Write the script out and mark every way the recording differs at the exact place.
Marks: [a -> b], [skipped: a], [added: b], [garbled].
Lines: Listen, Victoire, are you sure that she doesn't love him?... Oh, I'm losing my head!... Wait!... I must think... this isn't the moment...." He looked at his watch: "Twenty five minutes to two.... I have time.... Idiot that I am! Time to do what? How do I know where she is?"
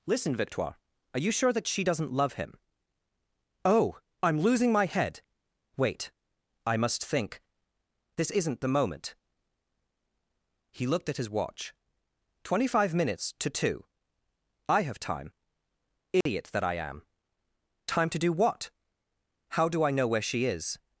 Listen, Victoire, are you sure that she doesn't love him?... Oh, I'm losing my head!... Wait!... I must think... this isn't the moment...." He looked at his watch: "Twenty five minutes to two.... I have time.... Idiot that I am! Time to do what? How do I know where she is?"